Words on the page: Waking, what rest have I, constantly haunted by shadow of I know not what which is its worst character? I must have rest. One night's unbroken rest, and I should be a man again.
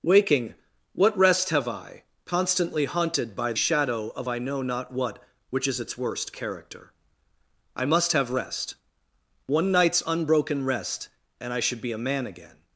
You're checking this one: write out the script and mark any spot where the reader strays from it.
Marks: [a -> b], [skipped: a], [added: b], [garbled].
Waking, what rest have I, constantly haunted by shadow of I know not what which is its worst character? I must have rest. One night's unbroken rest, and I should be a man again.